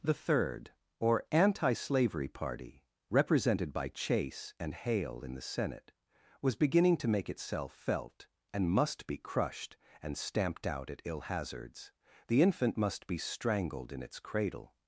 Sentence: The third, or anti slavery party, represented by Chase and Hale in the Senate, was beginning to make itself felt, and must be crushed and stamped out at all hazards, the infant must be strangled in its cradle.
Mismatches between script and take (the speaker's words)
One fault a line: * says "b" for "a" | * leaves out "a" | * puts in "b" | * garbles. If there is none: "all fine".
* says "ill" for "all"